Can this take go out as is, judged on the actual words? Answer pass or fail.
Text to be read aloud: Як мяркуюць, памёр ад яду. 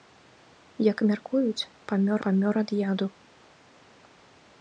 fail